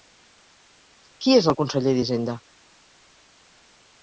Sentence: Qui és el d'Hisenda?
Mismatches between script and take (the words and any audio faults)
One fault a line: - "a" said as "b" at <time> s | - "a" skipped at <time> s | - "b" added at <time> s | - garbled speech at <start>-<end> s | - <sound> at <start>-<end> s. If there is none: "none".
- "conseller" added at 1.6 s